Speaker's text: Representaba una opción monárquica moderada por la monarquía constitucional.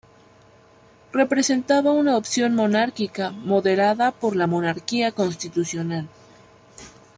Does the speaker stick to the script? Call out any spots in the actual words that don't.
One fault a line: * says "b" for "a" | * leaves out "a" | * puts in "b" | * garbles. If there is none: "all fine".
all fine